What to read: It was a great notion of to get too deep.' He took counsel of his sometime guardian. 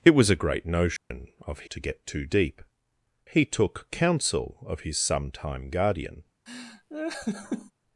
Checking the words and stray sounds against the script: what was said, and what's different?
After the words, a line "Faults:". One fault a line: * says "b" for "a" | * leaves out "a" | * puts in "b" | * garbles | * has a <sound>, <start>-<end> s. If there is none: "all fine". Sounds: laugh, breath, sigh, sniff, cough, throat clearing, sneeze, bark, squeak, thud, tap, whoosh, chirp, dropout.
It was a great notion of to get too deep.' He took counsel of his sometime guardian.
Faults:
* has a dropout, 1.0-1.1 s
* has a laugh, 6.5-7.7 s